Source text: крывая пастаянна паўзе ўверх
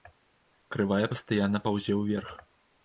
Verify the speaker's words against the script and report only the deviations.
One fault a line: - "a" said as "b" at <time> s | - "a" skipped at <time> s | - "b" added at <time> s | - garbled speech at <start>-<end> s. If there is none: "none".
none